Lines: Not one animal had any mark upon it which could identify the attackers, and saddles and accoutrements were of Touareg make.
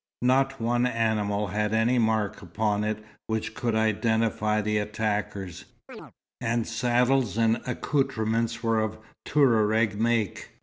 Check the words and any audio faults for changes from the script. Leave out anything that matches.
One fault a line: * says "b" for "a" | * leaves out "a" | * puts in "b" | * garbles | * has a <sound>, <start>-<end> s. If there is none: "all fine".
* has a chirp, 5.9-6.1 s